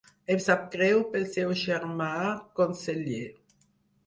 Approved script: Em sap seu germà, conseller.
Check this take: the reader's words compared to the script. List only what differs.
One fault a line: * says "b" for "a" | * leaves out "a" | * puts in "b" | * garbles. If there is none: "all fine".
* puts in "greu pel"